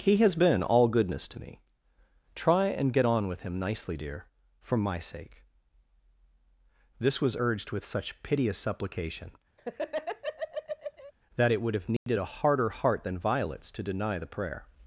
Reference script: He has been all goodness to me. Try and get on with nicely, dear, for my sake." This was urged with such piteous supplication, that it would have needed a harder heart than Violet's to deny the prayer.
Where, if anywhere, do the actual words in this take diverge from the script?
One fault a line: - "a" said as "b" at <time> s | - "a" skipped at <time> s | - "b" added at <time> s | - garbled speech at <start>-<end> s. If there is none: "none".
- "him" added at 3.4 s